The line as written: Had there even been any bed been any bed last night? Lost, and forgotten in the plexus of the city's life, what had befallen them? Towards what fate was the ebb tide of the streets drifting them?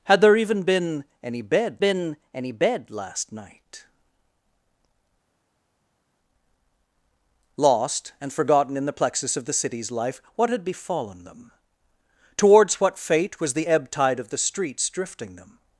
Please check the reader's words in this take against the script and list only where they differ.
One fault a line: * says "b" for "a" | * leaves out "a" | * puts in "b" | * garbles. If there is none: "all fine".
all fine